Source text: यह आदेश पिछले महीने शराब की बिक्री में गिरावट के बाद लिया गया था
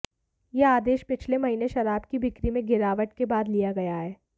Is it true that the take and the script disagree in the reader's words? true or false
true